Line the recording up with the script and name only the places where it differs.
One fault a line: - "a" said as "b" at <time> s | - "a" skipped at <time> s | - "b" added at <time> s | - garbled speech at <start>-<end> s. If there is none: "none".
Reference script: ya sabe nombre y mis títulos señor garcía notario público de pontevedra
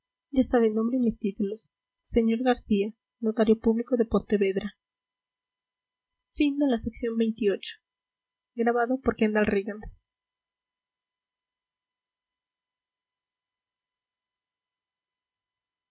none